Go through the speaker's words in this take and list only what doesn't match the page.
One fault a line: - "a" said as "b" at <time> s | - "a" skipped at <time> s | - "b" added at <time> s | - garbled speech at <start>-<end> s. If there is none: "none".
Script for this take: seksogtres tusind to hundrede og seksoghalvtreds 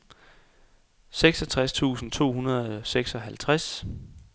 none